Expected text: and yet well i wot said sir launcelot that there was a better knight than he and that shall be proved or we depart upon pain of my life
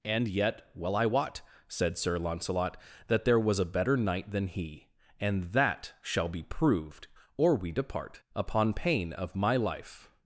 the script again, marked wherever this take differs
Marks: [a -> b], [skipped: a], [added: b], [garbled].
and yet well i wot said sir launcelot that there was a better knight than he and that shall be proved or we depart upon pain of my life